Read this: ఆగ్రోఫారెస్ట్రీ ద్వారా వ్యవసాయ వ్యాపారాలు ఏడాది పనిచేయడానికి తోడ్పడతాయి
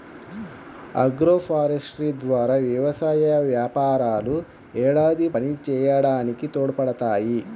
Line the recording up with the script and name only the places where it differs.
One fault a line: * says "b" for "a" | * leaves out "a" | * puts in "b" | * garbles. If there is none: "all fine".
all fine